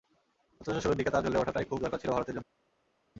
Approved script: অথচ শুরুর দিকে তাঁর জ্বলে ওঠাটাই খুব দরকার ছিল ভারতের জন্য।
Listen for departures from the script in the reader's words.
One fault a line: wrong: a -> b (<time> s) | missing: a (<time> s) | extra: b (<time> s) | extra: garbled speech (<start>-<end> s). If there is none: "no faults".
no faults